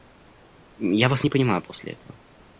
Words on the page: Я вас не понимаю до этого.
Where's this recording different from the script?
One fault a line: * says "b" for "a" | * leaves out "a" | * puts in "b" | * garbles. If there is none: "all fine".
* says "после" for "до"